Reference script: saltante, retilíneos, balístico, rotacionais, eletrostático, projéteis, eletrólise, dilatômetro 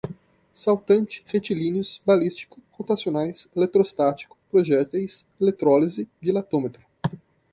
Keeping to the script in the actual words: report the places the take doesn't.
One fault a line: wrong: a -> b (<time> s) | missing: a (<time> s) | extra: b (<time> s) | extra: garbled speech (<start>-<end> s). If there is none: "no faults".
no faults